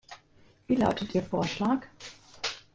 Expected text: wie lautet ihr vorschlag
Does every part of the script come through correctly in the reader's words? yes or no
yes